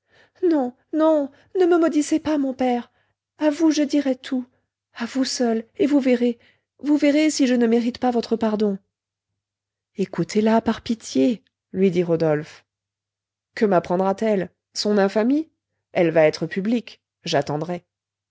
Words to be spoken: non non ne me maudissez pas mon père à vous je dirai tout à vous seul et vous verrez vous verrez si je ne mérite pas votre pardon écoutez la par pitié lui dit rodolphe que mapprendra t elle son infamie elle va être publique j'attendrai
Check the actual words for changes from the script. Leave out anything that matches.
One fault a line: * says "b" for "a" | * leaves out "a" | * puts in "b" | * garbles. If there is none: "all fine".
all fine